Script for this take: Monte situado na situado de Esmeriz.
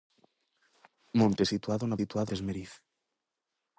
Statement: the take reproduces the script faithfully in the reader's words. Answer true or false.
true